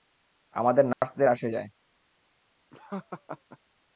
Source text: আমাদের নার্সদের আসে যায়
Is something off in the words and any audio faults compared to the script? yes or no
yes